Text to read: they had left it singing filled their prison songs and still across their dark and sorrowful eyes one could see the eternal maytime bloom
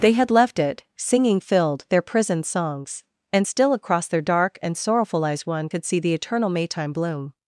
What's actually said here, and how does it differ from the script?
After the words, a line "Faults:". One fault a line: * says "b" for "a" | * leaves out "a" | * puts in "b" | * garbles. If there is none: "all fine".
they had left it singing filled their prison songs and still across their dark and sorrowful eyes one could see the eternal maytime bloom
Faults:
all fine